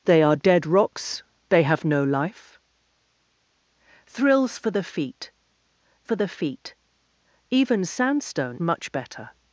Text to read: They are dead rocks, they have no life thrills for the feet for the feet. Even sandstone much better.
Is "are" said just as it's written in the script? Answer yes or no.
yes